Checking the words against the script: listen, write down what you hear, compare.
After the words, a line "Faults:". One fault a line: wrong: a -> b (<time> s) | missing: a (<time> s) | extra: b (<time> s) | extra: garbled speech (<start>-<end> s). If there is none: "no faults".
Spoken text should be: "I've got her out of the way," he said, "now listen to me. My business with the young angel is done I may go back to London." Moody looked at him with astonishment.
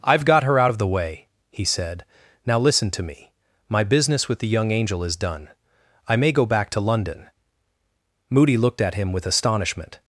"I've got her out of the way," he said, "now listen to me. My business with the young angel is done I may go back to London." Moody looked at him with astonishment.
Faults:
no faults